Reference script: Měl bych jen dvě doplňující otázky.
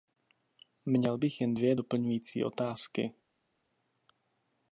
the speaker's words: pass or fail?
pass